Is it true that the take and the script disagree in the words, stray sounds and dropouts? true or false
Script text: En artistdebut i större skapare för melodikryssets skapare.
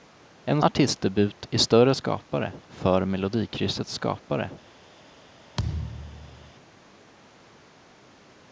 true